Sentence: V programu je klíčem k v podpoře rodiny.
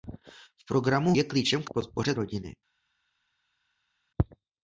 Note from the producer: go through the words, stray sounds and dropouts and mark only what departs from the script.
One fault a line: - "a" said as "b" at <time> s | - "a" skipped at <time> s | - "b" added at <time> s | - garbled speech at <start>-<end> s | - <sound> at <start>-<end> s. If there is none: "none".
none